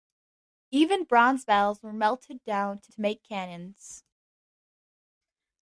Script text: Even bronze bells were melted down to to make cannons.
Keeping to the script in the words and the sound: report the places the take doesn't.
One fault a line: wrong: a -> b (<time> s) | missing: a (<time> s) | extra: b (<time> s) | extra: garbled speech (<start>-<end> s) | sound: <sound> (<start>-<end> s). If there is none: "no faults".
no faults